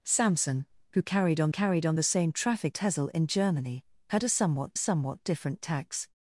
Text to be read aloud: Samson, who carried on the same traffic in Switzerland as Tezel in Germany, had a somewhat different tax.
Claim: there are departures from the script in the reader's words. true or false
true